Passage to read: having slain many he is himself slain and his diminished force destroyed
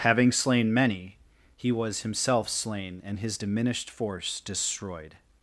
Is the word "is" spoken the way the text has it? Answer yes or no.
no